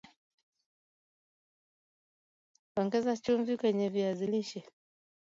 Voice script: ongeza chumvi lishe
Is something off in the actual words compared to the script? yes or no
yes